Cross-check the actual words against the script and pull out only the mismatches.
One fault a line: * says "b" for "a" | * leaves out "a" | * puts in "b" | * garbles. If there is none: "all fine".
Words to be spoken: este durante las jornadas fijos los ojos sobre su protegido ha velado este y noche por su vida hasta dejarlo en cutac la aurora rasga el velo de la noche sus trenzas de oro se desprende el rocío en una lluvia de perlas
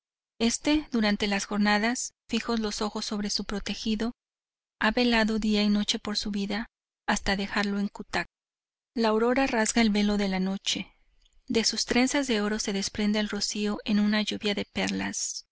* says "día" for "este"
* puts in "de"